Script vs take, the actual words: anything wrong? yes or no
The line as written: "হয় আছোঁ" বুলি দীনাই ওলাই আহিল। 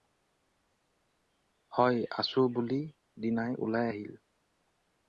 no